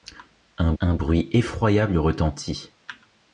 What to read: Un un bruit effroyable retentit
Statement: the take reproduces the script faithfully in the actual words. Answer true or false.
true